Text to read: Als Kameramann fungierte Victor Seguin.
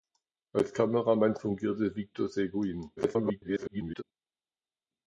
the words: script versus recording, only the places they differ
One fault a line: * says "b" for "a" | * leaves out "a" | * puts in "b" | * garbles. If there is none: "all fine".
* garbles